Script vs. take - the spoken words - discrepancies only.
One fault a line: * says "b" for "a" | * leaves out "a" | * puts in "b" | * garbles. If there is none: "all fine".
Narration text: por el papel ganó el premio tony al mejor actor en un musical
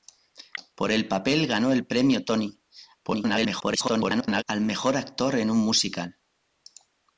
* garbles